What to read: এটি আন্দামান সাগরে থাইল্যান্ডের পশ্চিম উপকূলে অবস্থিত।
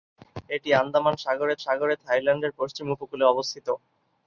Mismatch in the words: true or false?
true